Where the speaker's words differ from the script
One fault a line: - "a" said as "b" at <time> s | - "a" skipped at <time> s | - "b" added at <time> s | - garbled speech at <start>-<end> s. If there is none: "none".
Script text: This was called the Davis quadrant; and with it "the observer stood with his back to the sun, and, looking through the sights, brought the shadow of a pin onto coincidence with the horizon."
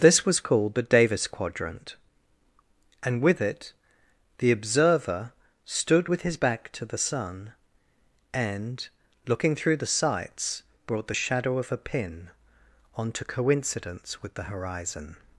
none